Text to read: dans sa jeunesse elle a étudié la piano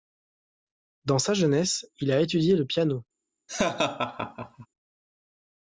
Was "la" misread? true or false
true